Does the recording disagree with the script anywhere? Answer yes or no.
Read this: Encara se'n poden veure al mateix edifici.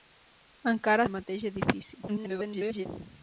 yes